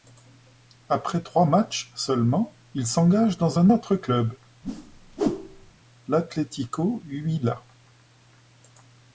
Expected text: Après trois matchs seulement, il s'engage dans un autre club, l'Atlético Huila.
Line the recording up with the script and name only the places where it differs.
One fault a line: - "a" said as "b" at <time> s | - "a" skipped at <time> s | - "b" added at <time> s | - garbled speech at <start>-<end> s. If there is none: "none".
none